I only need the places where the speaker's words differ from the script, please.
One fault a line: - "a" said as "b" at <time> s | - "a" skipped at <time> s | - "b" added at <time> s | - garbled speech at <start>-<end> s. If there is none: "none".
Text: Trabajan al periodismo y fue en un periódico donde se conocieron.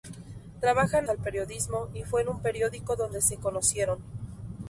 none